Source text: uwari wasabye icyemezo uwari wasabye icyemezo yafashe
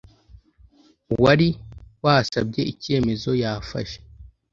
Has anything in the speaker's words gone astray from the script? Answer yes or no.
yes